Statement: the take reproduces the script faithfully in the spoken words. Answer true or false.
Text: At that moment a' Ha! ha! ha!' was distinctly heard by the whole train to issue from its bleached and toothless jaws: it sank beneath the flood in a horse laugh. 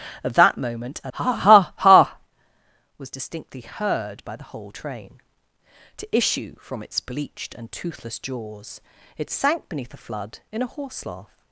true